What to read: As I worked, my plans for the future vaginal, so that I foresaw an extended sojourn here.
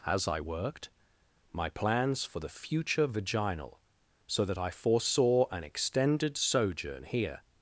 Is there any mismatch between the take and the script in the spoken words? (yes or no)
no